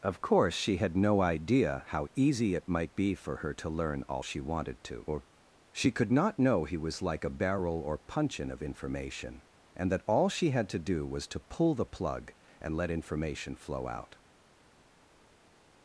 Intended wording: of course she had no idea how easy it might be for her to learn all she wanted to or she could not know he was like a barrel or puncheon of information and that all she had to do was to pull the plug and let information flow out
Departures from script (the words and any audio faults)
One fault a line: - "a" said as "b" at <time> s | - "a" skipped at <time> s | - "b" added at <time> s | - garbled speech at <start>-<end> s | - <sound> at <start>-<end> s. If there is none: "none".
none